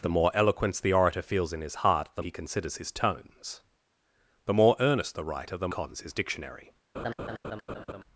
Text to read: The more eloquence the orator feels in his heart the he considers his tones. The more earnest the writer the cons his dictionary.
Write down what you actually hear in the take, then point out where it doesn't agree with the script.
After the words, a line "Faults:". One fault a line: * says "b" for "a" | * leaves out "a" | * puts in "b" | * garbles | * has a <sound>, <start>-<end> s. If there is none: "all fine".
The more eloquence the orator feels in his heart the he considers his tones. The more earnest the writer the cons his dictionary.
Faults:
* has a laugh, 6.9-8.0 s